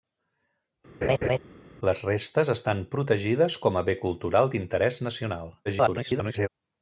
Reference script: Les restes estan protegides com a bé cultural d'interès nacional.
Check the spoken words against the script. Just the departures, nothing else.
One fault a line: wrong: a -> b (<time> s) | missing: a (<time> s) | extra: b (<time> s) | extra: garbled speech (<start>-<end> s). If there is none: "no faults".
extra: garbled speech (5.7-6.5 s)